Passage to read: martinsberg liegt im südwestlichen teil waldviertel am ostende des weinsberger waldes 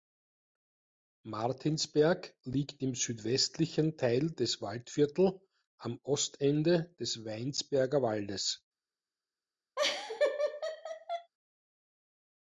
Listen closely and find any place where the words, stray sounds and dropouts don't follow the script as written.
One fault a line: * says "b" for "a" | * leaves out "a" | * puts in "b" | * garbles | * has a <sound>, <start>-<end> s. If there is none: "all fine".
* puts in "des"
* has a laugh, 9.8-11.3 s